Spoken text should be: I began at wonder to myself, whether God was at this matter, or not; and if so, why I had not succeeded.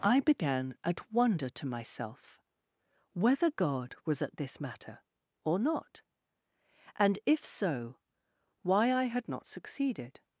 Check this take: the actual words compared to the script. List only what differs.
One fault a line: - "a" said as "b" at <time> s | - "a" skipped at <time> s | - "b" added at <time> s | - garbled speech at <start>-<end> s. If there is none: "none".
none